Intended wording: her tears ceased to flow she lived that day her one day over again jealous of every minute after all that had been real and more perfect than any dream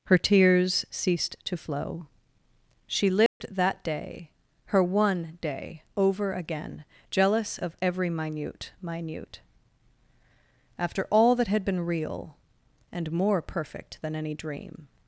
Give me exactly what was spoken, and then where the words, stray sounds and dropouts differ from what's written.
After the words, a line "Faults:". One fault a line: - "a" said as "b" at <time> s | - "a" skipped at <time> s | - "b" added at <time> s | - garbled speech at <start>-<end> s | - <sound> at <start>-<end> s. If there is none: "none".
her tears ceased to flow she lived that day her one day over again jealous of every minute minute after all that had been real and more perfect than any dream
Faults:
- dropout at 3.3-3.4 s
- "minute" added at 8.8 s